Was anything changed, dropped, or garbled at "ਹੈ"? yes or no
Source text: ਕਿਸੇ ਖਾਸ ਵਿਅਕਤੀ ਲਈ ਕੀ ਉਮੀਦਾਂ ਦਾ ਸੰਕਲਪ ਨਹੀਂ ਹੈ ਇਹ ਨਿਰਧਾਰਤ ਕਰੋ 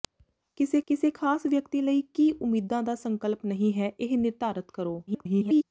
no